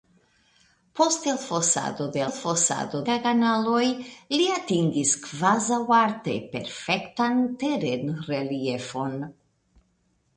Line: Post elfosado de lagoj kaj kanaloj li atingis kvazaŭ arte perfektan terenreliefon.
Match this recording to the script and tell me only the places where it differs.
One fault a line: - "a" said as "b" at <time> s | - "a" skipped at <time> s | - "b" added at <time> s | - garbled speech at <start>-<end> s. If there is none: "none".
- "lagoj" said as "elfosado" at 2.3 s